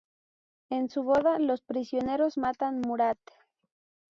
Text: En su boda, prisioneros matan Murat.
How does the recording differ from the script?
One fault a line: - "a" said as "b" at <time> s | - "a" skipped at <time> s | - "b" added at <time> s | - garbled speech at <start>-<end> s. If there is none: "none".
- "los" added at 1.4 s